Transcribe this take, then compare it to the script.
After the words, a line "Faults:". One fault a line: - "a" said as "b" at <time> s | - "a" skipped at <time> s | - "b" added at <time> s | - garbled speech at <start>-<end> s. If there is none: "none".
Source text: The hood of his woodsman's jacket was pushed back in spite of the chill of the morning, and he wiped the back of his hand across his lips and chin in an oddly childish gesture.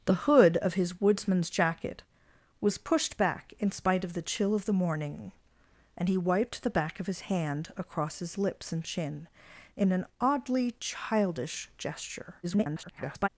The hood of his woodsman's jacket was pushed back in spite of the chill of the morning, and he wiped the back of his hand across his lips and chin in an oddly childish gesture. [garbled]
Faults:
- garbled speech at 12.4-13.3 s